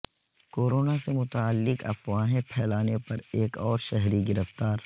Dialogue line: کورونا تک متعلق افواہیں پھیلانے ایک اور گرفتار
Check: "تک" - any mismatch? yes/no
yes